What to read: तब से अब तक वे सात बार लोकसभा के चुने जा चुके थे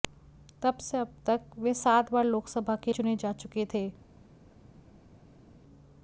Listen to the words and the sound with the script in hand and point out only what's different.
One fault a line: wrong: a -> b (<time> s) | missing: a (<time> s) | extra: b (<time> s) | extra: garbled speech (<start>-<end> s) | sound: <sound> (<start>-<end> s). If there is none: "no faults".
no faults